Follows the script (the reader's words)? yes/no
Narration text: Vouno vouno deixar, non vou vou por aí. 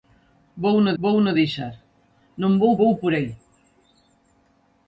yes